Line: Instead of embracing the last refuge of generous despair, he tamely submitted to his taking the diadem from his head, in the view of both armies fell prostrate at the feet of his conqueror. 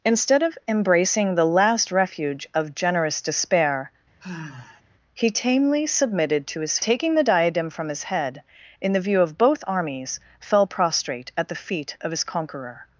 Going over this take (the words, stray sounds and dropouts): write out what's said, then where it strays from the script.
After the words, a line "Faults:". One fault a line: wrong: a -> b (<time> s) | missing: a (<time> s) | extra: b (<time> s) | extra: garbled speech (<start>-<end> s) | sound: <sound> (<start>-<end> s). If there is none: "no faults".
Instead of embracing the last refuge of generous despair, he tamely submitted to his taking the diadem from his head, in the view of both armies fell prostrate at the feet of his conqueror.
Faults:
sound: sigh (4.2-4.8 s)